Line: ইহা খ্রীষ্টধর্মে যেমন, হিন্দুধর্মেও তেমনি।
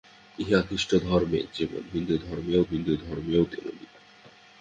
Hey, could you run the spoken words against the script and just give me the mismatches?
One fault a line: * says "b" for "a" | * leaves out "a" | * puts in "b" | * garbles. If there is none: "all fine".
* puts in "হিন্দুধর্মেও"